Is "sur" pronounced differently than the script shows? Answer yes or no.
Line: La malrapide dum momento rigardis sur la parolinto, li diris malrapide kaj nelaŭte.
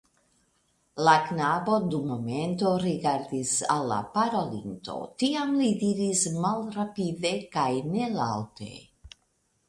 yes